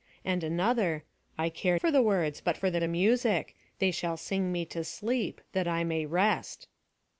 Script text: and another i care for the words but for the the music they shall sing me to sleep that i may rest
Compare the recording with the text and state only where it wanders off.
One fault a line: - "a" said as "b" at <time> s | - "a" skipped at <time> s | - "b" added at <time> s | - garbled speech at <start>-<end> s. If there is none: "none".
none